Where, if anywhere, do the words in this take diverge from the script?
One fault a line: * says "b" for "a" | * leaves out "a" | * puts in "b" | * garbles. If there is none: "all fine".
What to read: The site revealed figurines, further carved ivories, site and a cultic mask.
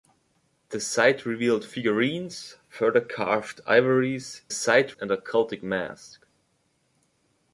all fine